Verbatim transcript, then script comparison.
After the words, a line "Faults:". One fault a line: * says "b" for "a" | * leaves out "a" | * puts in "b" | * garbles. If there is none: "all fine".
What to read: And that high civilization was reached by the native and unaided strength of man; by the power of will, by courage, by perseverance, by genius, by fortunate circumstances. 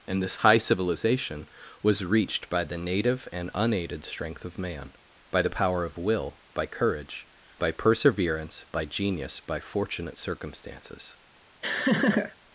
And this high civilization was reached by the native and unaided strength of man; by the power of will, by courage, by perseverance, by genius, by fortunate circumstances.
Faults:
* says "this" for "that"